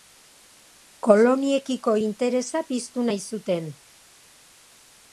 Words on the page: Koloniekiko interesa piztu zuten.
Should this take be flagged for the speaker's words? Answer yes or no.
yes